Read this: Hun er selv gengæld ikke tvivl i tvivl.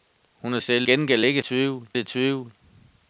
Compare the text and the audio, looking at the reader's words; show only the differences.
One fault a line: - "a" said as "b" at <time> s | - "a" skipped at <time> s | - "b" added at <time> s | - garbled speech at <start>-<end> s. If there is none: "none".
none